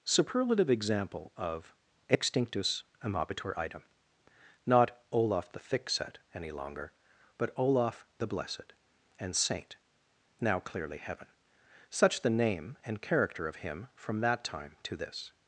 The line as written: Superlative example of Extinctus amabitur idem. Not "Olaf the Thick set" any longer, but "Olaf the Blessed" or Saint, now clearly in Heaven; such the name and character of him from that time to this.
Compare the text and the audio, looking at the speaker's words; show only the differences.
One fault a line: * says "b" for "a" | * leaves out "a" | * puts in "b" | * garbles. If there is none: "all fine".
* says "and" for "or"
* leaves out "in"